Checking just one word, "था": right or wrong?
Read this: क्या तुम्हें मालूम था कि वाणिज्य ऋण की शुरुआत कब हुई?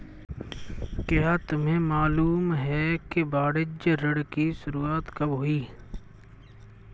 wrong